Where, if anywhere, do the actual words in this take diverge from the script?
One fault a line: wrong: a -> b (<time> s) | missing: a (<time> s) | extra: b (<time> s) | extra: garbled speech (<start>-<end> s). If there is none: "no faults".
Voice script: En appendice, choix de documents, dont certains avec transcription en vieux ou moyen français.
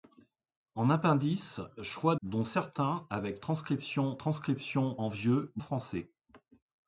missing: de documents (2.1 s)
extra: transcription (4.2 s)
missing: moyen (5.6 s)